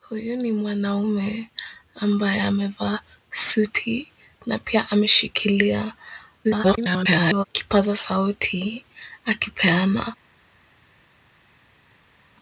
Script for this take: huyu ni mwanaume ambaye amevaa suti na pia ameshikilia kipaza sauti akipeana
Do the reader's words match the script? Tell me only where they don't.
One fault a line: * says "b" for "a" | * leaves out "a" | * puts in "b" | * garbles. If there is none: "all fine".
* garbles